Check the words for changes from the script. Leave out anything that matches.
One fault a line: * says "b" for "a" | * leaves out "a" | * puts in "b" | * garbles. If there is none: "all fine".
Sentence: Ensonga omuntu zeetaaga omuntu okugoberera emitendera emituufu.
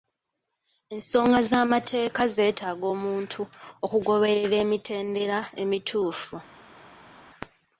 * says "z'amateeka" for "omuntu"